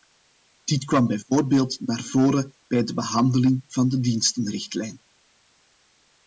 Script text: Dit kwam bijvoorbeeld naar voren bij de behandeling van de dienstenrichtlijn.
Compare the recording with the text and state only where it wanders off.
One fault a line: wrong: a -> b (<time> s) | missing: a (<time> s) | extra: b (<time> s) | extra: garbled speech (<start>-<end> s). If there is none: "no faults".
no faults